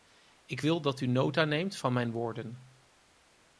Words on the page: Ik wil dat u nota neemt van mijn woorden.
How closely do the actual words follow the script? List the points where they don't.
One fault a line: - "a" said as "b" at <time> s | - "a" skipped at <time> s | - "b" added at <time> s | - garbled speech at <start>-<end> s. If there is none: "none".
none